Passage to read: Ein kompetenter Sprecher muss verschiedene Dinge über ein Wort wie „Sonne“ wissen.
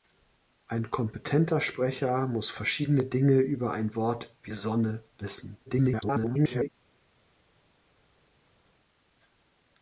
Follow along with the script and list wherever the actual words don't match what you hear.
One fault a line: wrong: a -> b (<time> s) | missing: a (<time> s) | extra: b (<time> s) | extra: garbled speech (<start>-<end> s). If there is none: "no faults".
extra: garbled speech (5.7-6.7 s)